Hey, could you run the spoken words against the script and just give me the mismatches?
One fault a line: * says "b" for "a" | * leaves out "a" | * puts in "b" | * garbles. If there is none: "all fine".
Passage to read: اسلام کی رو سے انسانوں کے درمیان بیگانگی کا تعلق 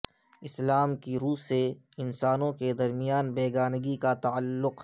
all fine